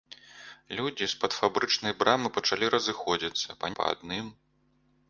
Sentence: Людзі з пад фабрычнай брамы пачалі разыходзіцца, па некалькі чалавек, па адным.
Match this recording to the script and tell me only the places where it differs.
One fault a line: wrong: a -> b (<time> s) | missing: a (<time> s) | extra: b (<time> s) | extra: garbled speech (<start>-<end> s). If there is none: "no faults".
missing: некалькі чалавек (3.7 s)